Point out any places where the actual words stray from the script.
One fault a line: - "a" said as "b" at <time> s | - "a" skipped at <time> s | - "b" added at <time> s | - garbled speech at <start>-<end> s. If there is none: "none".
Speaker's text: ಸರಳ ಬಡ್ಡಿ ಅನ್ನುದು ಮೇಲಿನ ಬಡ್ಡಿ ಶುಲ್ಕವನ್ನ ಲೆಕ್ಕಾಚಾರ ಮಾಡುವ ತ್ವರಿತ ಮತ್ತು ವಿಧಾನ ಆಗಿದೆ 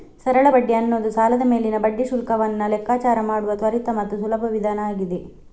- "ಸಾಲದ" added at 1.1 s
- "ಸುಲಭ" added at 4.2 s